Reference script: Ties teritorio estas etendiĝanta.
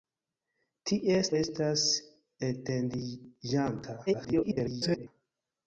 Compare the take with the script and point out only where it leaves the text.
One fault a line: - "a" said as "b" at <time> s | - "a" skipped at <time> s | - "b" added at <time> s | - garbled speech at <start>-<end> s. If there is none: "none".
- "teritorio" skipped at 1.3 s
- garbled speech at 4.1-5.1 s